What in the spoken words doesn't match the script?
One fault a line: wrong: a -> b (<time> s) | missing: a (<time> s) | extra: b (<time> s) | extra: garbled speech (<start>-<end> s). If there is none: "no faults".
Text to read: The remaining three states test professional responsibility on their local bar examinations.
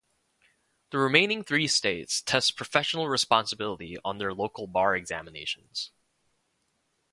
no faults